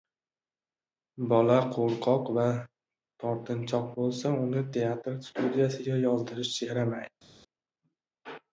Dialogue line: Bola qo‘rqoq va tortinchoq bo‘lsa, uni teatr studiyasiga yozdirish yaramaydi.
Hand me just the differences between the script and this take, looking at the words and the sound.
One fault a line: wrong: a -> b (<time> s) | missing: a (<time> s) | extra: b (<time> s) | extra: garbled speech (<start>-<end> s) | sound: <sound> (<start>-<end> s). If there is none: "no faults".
no faults